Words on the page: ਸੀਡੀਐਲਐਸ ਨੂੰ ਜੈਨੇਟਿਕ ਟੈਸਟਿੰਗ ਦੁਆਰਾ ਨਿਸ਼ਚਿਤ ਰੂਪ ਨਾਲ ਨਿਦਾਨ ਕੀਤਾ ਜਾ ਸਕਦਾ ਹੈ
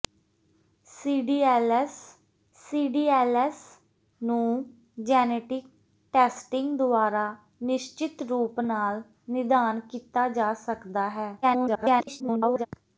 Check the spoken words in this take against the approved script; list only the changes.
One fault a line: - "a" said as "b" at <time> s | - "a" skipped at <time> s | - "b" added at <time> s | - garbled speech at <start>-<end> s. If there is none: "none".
- "ਸੀਡੀਐਲਐਸ" added at 2.6 s
- garbled speech at 11.4-12.7 s